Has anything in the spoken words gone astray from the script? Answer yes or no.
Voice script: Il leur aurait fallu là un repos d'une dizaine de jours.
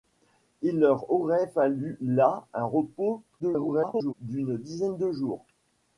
yes